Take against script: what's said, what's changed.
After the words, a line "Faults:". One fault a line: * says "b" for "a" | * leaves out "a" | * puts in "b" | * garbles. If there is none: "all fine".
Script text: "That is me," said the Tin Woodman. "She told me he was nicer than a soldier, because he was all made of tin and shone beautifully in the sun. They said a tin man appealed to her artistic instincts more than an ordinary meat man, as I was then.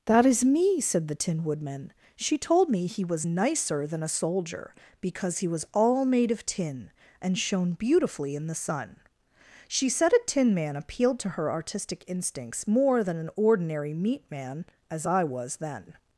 "That is me," said the Tin Woodman. "She told me he was nicer than a soldier, because he was all made of tin and shone beautifully in the sun. She said a tin man appealed to her artistic instincts more than an ordinary meat man, as I was then.
Faults:
* says "She" for "They"